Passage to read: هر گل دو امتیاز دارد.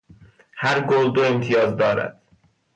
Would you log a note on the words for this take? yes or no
no